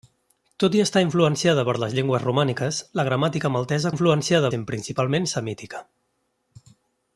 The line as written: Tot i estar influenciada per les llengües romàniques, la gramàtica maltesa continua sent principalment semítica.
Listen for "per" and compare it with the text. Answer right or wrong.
right